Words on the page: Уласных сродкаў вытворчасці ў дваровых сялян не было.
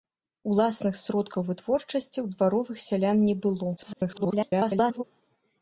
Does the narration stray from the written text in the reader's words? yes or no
yes